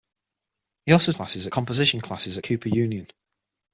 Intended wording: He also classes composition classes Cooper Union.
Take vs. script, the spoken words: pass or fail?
pass